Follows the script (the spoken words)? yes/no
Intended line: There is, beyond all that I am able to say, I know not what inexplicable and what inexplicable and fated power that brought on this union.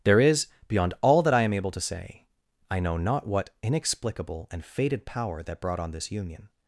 no